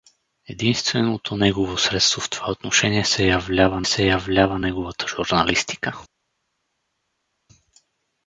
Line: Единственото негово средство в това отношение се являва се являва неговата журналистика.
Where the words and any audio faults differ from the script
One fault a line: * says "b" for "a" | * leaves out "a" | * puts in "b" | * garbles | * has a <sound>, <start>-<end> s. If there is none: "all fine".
all fine